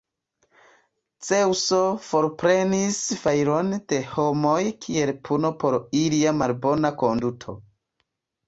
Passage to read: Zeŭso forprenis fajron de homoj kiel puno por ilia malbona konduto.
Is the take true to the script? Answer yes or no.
yes